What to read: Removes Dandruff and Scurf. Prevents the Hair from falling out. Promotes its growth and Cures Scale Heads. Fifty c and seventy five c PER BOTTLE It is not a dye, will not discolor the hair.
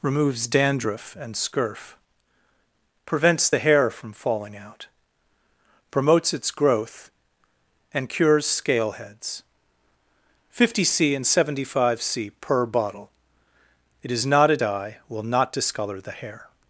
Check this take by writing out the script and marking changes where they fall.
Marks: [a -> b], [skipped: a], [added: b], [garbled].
Removes Dandruff and Scurf. Prevents the Hair from falling out. Promotes its growth and Cures Scale Heads. Fifty c and seventy five c PER BOTTLE It is not a dye, will not discolor the hair.